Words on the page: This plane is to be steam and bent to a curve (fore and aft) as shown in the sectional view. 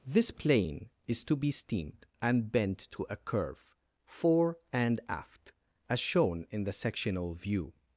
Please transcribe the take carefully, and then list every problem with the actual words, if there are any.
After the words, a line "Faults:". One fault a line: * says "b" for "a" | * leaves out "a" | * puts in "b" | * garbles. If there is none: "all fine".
This plane is to be steamed and bent to a curve (fore and aft) as shown in the sectional view.
Faults:
* says "steamed" for "steam"